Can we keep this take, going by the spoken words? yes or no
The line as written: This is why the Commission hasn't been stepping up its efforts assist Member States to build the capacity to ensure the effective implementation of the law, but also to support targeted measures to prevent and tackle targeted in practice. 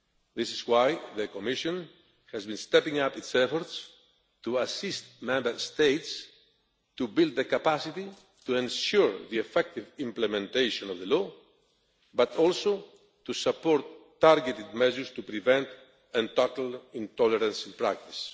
no